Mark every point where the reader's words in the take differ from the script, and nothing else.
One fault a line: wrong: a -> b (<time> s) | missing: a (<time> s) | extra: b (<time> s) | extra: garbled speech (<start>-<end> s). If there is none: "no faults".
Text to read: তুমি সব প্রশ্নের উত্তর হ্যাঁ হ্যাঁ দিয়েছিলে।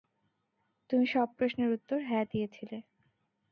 missing: হ্যাঁ (2.2 s)